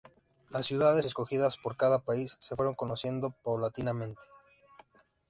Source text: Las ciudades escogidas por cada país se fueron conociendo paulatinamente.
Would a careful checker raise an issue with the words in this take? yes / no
no